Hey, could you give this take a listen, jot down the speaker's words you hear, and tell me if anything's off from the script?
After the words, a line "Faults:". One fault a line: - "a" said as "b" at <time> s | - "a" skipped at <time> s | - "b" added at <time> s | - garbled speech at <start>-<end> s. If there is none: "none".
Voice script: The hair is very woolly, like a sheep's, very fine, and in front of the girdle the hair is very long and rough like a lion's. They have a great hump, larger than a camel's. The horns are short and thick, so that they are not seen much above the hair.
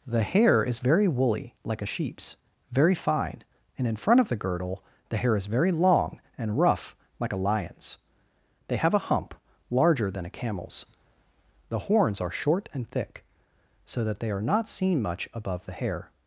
The hair is very woolly, like a sheep's, very fine, and in front of the girdle the hair is very long and rough like a lion's. They have a hump, larger than a camel's. The horns are short and thick, so that they are not seen much above the hair.
Faults:
- "great" skipped at 9.1 s